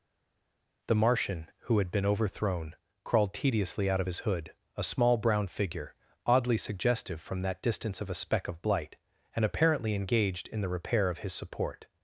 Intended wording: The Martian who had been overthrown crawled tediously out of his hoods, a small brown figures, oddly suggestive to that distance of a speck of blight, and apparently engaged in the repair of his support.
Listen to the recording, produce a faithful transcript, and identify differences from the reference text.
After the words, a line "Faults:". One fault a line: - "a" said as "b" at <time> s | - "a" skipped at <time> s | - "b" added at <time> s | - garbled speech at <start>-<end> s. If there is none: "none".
The Martian who had been overthrown crawled tediously out of his hood, a small brown figure, oddly suggestive from that distance of a speck of blight, and apparently engaged in the repair of his support.
Faults:
- "hoods" said as "hood" at 4.2 s
- "figures" said as "figure" at 5.5 s
- "to" said as "from" at 7.2 s